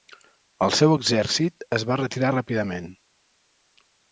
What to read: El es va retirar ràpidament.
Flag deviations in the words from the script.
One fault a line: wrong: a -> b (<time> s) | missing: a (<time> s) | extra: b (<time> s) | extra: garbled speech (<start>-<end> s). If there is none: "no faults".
extra: seu exèrcit (0.8 s)